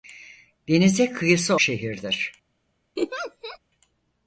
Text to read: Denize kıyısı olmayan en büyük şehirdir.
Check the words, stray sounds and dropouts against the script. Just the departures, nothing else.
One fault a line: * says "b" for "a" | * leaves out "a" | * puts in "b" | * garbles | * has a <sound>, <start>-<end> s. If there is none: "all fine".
* leaves out "olmayan en büyük"
* has a laugh, 3.0-3.6 s